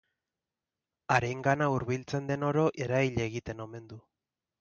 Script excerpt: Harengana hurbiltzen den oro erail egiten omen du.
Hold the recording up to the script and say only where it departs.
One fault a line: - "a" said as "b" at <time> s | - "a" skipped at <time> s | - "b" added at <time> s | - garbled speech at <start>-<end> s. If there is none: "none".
none